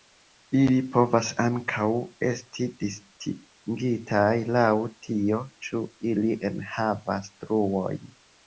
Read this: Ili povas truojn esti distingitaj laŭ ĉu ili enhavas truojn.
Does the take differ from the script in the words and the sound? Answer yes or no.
yes